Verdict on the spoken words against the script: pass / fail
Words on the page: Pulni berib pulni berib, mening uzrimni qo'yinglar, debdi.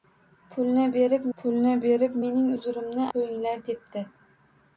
pass